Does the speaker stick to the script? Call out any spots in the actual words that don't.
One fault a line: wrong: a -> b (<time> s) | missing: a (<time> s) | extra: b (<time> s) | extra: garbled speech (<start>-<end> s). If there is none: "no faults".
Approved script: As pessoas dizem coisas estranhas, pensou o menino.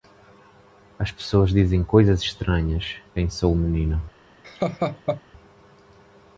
no faults